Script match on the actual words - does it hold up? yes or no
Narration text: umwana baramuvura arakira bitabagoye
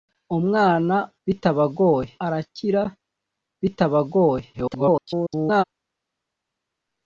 no